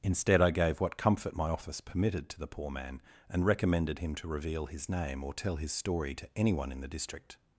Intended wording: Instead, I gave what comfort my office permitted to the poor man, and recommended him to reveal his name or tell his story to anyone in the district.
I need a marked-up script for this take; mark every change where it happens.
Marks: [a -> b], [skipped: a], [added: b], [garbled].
Instead, I gave what comfort my office permitted to the poor man, and recommended him to reveal his name or tell his story to anyone in the district.